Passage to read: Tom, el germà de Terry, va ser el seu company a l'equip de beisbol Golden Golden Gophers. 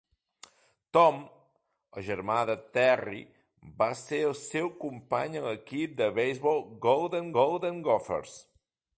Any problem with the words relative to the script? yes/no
no